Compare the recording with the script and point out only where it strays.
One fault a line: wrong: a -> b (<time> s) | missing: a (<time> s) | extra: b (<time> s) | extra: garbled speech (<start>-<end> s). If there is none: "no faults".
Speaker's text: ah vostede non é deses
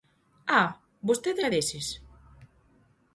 missing: non (1.4 s)